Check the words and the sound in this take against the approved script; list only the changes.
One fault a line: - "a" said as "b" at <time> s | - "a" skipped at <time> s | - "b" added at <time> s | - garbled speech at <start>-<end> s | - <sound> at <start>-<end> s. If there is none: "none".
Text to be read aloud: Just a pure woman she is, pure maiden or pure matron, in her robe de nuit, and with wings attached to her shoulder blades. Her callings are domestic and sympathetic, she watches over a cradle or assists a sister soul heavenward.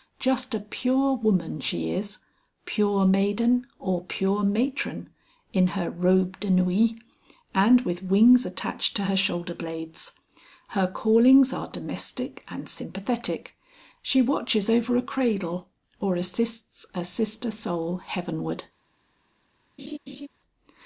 - laugh at 19.8-20.3 s